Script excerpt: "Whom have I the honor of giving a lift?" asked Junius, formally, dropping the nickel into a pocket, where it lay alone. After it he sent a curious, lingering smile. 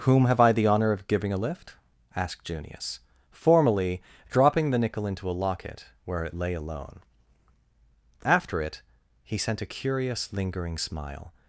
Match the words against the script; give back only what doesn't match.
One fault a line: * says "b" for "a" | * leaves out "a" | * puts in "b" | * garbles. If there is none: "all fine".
* says "locket" for "pocket"